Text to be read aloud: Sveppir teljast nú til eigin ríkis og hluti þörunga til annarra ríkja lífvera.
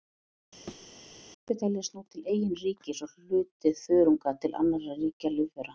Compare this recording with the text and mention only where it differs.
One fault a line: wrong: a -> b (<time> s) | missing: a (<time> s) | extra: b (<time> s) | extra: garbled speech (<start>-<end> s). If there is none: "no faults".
no faults